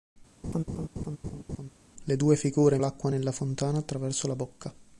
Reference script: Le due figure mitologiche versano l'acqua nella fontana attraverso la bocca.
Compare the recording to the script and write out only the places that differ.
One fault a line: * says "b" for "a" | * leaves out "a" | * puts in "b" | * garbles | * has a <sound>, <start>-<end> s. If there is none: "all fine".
* has a laugh, 0.4-1.7 s
* leaves out "mitologiche versano"